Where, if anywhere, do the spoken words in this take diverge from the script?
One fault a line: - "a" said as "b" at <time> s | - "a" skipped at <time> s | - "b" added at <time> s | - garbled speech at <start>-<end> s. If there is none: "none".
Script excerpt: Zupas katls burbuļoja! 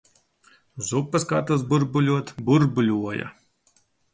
- "burbuļot" added at 1.7 s